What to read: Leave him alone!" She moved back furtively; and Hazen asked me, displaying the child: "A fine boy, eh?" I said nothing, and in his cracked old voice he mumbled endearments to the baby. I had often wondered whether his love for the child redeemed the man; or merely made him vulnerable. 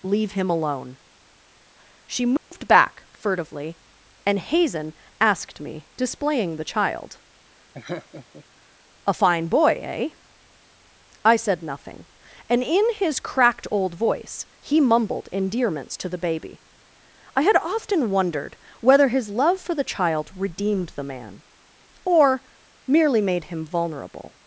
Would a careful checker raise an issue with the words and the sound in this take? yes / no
yes